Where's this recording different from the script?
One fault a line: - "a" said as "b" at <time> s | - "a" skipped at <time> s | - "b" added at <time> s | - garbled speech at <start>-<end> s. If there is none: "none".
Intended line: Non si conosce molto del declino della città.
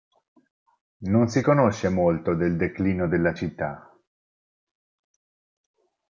none